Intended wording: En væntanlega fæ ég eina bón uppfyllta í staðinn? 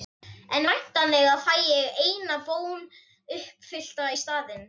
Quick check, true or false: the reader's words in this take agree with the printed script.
true